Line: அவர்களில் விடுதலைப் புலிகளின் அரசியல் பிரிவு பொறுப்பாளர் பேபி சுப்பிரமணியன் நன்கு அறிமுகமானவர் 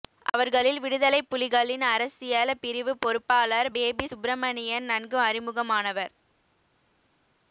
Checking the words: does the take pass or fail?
pass